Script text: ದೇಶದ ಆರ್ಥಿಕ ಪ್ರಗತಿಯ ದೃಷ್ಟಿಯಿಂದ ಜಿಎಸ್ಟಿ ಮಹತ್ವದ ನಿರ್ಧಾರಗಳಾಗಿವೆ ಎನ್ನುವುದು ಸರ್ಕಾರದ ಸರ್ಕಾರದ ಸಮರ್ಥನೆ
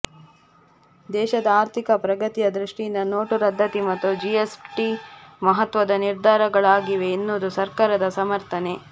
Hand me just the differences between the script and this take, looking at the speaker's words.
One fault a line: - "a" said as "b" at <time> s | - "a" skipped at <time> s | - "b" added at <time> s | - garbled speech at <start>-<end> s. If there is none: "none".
- "ನೋಟು ರದ್ದತಿ ಮತ್ತು" added at 3.1 s
- "ಸರ್ಕಾರದ" skipped at 8.1 s